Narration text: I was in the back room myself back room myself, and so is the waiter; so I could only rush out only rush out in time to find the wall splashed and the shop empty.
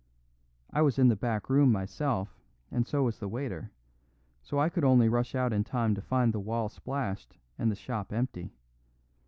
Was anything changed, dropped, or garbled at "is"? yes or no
yes